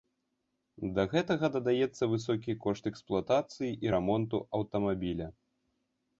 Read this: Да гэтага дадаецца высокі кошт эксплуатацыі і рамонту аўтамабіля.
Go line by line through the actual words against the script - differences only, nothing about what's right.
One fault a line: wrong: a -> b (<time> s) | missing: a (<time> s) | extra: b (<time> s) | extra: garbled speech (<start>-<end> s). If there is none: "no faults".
no faults